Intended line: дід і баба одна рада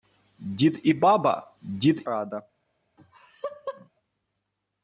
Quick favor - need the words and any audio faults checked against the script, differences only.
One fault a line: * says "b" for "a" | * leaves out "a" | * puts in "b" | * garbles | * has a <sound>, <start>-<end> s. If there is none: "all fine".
* says "дід" for "одна"
* has a laugh, 3.0-3.9 s